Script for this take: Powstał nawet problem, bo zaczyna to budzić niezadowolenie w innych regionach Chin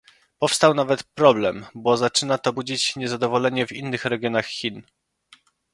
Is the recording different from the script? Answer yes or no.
no